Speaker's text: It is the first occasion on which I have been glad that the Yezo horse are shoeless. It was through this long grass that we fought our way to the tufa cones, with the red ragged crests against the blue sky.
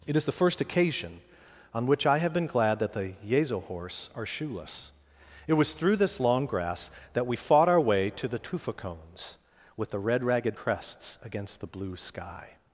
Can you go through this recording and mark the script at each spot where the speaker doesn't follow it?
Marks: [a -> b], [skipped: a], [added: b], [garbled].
It is the first occasion on which I have been glad that the Yezo horse are shoeless. It was through this long grass that we fought our way to the tufa cones, with the red ragged crests against the blue sky.